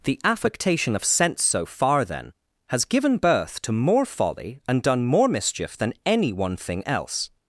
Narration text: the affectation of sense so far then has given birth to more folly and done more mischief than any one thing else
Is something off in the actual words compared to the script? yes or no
no